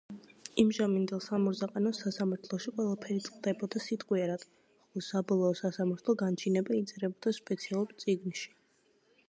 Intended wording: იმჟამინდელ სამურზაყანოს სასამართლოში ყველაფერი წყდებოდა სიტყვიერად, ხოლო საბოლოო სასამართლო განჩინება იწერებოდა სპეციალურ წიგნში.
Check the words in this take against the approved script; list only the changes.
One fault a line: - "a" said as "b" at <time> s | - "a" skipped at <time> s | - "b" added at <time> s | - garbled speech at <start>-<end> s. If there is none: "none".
none